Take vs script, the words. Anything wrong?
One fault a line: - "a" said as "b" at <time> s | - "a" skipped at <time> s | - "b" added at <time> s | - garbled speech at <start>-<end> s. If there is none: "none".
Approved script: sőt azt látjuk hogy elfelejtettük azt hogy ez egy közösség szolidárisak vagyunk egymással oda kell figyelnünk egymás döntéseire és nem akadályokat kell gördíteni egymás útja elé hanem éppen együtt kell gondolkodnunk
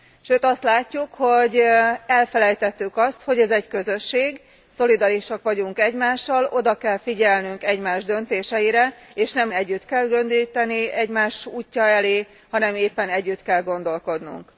- "akadályokat" said as "együtt" at 9.5 s